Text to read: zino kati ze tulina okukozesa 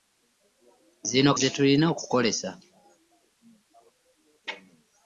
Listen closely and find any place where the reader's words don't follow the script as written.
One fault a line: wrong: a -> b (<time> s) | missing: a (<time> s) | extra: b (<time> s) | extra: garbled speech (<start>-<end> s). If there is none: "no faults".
missing: kati (1.3 s)